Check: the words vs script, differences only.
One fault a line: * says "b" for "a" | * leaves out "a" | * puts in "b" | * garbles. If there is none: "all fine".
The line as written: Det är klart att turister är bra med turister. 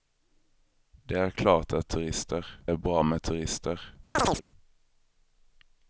all fine